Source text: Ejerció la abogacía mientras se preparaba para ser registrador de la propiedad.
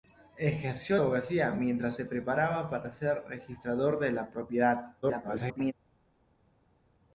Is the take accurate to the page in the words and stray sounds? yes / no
no